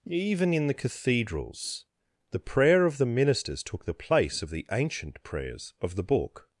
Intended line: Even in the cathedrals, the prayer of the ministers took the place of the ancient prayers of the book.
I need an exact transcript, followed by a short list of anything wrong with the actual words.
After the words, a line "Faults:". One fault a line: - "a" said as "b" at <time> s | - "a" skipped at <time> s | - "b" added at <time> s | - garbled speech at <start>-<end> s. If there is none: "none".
Even in the cathedrals, the prayer of the ministers took the place of the ancient prayers of the book.
Faults:
none